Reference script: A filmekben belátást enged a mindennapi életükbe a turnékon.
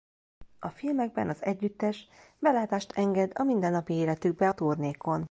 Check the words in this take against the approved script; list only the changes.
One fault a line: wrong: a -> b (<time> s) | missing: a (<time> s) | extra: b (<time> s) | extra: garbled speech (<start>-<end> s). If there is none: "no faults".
extra: az együttes (1.3 s)